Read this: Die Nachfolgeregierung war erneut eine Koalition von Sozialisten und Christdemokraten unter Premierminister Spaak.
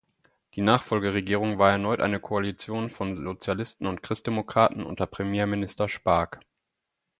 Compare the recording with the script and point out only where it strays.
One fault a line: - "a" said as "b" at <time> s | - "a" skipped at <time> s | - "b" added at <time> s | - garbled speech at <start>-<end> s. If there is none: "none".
none